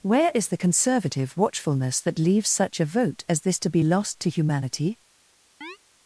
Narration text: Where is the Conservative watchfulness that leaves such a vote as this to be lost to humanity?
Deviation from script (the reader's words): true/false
false